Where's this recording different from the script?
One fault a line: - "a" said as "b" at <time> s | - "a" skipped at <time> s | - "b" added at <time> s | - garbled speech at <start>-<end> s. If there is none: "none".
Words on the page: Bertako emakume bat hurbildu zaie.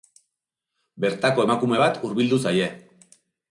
none